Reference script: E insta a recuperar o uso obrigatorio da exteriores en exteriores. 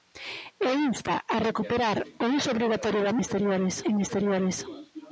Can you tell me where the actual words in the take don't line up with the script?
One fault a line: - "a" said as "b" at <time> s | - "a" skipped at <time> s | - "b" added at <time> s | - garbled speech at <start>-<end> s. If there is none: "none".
none